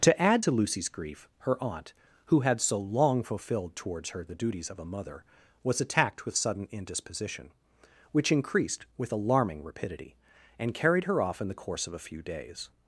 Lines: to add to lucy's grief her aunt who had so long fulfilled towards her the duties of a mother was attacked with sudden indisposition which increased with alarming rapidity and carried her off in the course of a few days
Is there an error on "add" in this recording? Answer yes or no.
no